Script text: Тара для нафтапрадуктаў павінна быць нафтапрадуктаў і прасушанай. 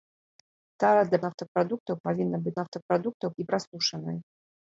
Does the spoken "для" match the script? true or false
true